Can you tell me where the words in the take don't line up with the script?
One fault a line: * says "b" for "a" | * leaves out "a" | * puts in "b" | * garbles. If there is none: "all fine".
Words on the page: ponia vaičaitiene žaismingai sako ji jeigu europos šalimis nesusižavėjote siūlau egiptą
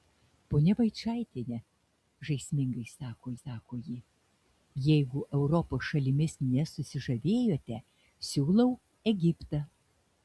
* puts in "sako"